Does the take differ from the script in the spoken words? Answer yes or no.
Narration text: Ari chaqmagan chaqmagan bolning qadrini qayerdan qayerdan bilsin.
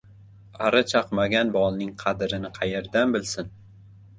yes